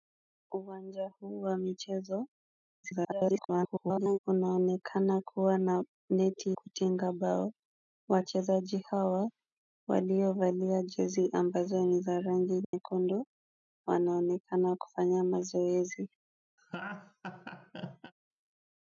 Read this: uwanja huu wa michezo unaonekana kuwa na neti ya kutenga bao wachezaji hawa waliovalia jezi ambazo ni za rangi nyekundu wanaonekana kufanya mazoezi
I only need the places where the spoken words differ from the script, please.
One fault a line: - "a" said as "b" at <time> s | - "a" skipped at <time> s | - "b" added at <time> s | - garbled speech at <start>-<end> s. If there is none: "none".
- garbled speech at 2.8-4.2 s
- "ya" skipped at 6.6 s